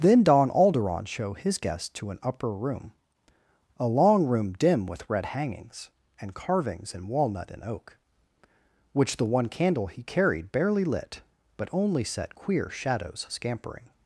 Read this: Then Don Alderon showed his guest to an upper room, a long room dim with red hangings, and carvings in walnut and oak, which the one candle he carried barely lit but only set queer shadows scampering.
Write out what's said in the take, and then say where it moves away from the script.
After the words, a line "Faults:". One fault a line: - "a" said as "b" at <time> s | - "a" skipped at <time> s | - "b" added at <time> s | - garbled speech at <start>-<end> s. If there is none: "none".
Then Don Alderon show his guest to an upper room, a long room dim with red hangings, and carvings in walnut and oak, which the one candle he carried barely lit but only set queer shadows scampering.
Faults:
- "showed" said as "show" at 1.1 s